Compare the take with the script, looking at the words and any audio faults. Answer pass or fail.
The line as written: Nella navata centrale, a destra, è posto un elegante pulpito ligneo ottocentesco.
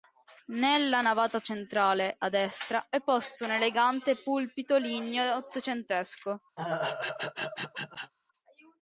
fail